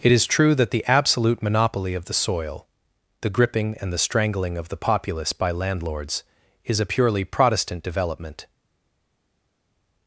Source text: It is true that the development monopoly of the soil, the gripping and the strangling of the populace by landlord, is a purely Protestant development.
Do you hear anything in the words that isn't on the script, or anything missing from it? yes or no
yes